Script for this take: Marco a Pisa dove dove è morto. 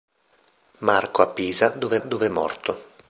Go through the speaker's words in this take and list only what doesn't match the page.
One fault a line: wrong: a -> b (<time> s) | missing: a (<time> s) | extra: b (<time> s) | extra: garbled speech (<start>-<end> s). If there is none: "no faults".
no faults